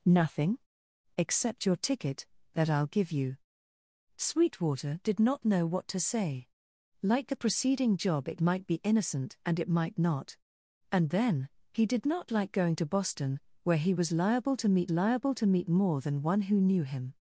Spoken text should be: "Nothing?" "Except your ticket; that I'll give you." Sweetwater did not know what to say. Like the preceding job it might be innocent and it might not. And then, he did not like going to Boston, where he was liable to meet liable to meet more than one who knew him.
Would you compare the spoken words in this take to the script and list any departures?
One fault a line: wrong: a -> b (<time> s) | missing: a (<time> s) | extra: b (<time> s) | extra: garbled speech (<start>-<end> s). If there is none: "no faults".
no faults